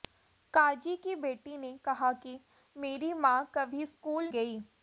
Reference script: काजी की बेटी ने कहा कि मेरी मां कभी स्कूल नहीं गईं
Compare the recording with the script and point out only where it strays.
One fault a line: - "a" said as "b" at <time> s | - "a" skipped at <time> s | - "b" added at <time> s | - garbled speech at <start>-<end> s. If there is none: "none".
- "नहीं" skipped at 4.3 s